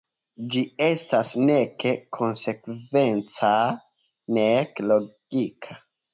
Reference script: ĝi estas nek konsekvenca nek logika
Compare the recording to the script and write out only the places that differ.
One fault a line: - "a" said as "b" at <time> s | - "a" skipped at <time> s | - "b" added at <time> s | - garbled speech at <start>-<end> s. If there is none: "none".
none